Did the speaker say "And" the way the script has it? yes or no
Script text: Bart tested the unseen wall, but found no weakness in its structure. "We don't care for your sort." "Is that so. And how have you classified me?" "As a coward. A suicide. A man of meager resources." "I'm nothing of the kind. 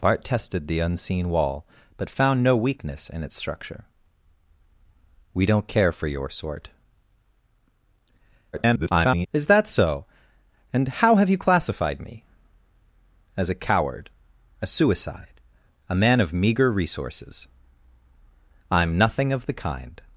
yes